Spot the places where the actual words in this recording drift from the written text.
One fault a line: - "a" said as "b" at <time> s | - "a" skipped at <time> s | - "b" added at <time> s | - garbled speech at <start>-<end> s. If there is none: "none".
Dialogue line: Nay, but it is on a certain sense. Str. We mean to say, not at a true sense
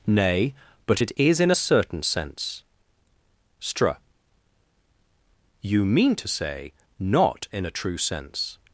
- "on" said as "in" at 1.4 s
- "We" said as "You" at 5.6 s
- "at" said as "in" at 7.5 s